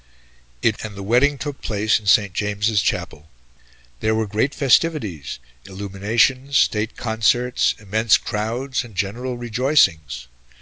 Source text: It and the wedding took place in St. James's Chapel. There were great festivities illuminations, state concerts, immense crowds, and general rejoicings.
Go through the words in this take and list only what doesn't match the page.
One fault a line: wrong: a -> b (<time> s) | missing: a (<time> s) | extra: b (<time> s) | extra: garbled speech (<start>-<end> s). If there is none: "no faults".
no faults